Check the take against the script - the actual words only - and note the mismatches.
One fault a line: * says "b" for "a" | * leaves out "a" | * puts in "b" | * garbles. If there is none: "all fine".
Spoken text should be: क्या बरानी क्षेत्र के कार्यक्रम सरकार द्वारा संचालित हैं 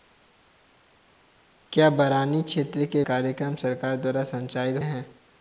all fine